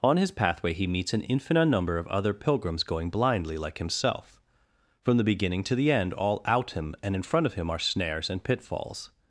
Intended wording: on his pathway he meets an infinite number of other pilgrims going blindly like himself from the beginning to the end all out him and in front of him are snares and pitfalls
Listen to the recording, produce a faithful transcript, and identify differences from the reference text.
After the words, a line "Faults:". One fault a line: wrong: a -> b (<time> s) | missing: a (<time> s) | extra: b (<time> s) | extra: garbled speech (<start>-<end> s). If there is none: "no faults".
on his pathway he meets an infinite number of other pilgrims going blindly like himself from the beginning to the end all out him and in front of him are snares and pitfalls
Faults:
no faults